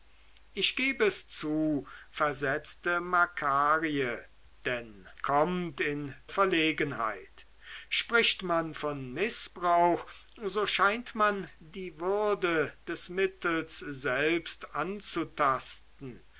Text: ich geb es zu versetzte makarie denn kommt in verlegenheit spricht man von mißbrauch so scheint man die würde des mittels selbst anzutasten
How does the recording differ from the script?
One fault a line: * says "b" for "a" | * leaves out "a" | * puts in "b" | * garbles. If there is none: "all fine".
all fine